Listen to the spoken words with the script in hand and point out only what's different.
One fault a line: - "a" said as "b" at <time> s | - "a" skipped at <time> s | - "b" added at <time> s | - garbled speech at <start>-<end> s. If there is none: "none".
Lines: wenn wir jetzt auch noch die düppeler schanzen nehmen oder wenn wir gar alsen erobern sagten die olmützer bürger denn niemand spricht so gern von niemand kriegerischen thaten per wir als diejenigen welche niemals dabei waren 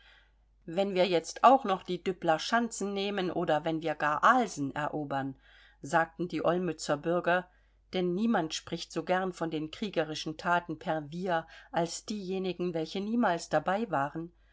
- "niemand" said as "den" at 9.5 s